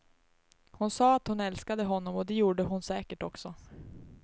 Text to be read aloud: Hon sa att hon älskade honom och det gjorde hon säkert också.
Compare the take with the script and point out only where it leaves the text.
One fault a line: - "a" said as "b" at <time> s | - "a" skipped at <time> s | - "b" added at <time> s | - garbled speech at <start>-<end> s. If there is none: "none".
none